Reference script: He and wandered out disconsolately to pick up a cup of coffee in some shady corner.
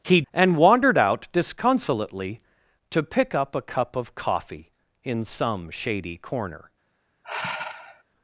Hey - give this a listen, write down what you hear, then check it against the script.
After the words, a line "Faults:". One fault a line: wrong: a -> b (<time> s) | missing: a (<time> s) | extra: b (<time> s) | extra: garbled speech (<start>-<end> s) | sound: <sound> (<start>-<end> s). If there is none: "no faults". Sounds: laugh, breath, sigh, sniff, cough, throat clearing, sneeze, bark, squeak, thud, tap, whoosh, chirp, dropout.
He and wandered out disconsolately to pick up a cup of coffee in some shady corner.
Faults:
sound: sigh (7.2-8.0 s)